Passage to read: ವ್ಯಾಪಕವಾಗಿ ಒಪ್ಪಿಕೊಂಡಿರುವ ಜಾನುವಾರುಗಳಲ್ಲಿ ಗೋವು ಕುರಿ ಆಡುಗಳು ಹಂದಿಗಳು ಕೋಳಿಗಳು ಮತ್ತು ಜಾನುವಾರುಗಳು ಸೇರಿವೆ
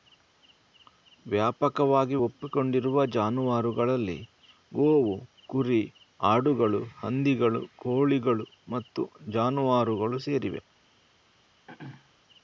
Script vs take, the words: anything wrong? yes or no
no